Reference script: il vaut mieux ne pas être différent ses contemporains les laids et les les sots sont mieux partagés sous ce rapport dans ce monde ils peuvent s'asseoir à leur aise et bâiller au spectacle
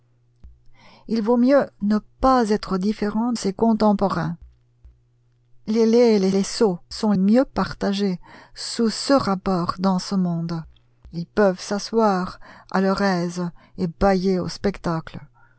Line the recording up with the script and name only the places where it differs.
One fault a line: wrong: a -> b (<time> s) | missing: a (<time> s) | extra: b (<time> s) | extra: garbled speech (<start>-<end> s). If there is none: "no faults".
no faults